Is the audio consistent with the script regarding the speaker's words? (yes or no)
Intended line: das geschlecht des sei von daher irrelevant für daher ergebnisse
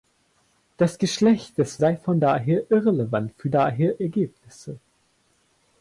yes